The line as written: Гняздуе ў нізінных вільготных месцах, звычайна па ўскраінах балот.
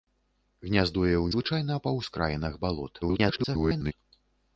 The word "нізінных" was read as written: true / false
false